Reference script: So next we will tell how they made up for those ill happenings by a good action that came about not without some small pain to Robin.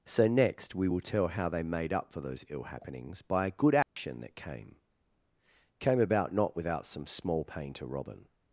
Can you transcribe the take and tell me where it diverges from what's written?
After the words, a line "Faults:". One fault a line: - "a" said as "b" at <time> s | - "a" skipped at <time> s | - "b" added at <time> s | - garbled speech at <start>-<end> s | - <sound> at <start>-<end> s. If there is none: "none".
So next we will tell how they made up for those ill happenings by a good action that came came about not without some small pain to Robin.
Faults:
- dropout at 3.8-4.0 s
- "came" added at 5.8 s